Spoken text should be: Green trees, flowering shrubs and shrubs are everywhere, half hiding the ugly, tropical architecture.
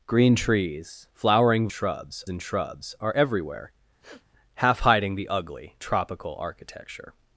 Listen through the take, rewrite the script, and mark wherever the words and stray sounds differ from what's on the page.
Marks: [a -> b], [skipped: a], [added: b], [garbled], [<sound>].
Green trees, flowering shrubs and shrubs are everywhere, [sniff] half hiding the ugly, tropical architecture.